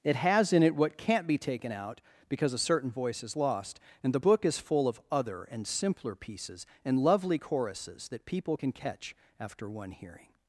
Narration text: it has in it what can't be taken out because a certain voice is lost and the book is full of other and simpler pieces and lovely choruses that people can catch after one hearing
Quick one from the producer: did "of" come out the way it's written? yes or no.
yes